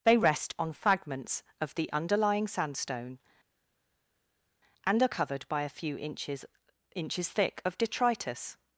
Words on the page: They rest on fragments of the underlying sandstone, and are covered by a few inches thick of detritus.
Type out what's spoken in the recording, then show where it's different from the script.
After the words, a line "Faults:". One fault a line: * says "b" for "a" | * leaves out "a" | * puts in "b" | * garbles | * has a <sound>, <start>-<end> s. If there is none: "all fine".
They rest on fragments of the underlying sandstone, and are covered by a few inches inches thick of detritus.
Faults:
* puts in "inches"